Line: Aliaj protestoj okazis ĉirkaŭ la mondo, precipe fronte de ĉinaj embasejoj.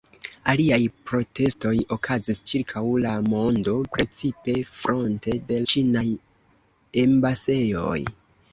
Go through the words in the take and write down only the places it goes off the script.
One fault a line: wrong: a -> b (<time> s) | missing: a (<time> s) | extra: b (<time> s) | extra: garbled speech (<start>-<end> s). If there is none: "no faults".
no faults